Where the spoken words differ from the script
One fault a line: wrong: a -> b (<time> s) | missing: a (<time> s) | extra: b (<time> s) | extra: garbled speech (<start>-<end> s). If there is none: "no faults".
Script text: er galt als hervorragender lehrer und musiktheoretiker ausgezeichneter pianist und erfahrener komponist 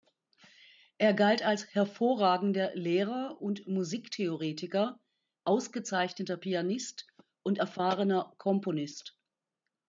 no faults